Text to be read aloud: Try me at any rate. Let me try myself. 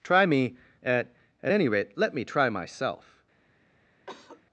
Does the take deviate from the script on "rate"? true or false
false